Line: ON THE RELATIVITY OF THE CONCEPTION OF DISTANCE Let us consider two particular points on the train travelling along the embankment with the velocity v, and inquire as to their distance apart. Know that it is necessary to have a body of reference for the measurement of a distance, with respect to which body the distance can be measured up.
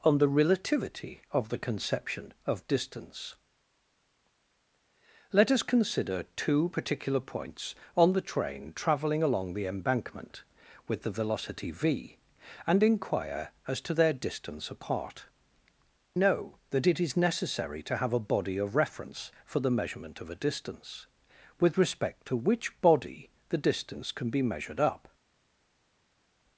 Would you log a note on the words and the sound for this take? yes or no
no